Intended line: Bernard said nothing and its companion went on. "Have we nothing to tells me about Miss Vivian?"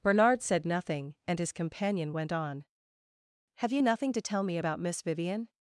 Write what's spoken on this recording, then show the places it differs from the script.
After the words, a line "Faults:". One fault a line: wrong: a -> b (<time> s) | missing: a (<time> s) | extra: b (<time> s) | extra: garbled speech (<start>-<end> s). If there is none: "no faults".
Bernard said nothing and his companion went on. "Have you nothing to tell me about Miss Vivian?"
Faults:
wrong: its -> his (1.4 s)
wrong: we -> you (3.7 s)
wrong: tells -> tell (4.2 s)